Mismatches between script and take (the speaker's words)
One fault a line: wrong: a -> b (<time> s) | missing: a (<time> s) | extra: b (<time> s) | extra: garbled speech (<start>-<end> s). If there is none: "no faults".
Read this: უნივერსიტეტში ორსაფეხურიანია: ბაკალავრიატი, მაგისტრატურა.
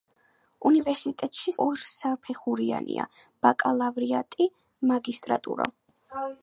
no faults